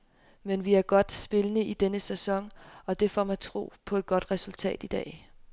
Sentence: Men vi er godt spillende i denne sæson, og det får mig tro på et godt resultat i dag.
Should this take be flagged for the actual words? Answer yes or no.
no